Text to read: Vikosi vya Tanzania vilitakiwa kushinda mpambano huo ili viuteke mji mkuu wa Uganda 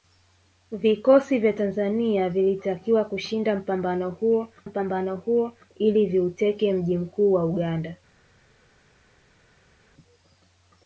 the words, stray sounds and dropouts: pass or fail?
fail